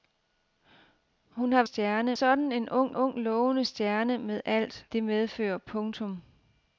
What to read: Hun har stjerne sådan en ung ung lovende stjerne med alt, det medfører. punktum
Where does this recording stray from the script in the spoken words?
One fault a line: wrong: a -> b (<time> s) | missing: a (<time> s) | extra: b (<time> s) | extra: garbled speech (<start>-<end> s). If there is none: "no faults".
no faults